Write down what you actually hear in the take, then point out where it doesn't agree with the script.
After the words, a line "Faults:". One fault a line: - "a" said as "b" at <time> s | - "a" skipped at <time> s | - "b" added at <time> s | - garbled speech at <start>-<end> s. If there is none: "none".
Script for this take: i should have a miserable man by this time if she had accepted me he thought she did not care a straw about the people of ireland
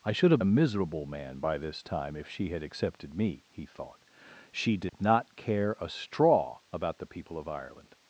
i should have a miserable man by this time if she had accepted me he thought she did not care a straw about the people of ireland
Faults:
none